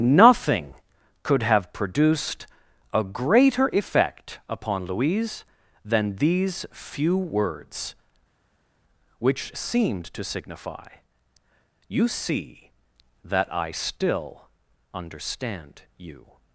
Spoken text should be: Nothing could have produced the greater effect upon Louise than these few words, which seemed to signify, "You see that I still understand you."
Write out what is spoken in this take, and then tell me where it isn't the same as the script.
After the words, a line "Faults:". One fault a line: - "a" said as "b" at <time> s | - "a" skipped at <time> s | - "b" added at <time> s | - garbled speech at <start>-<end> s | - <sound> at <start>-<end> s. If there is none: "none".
Nothing could have produced a greater effect upon Louise than these few words, which seemed to signify, "You see that I still understand you."
Faults:
- "the" said as "a" at 2.9 s